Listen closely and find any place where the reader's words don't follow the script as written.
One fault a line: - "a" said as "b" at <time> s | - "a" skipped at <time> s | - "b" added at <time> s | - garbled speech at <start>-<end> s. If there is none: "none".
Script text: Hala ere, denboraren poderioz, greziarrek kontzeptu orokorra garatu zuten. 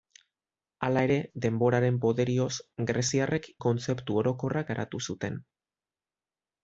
none